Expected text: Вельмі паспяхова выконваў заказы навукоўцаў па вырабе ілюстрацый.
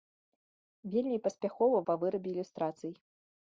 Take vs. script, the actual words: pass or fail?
fail